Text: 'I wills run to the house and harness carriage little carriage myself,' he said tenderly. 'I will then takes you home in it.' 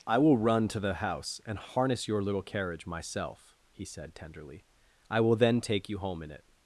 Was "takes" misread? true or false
true